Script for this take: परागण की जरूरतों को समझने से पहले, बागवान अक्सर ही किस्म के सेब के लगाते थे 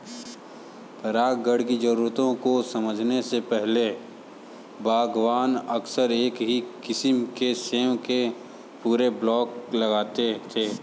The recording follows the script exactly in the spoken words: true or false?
false